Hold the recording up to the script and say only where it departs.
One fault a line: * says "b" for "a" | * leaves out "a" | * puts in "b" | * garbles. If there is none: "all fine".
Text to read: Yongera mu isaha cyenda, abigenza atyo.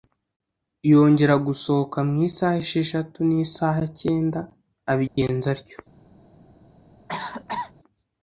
* puts in "gusohoka"
* puts in "esheshatu n'isaha"